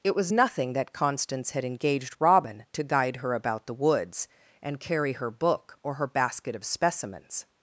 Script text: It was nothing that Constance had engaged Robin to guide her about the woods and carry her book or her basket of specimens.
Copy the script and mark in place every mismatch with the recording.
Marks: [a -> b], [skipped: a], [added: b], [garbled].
It was nothing that Constance had engaged Robin to guide her about the woods and carry her book or her basket of specimens.